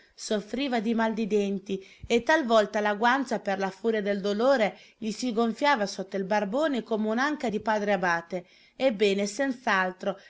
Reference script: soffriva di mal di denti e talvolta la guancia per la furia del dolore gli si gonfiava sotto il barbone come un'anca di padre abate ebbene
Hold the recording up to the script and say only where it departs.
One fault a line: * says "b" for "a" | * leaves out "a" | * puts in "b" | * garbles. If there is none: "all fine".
all fine